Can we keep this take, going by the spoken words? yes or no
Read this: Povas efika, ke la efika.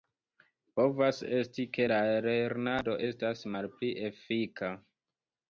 no